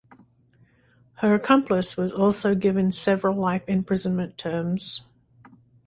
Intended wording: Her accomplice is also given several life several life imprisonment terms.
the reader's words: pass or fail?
fail